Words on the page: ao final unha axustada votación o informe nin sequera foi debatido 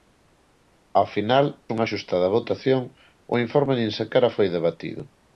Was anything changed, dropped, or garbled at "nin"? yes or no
no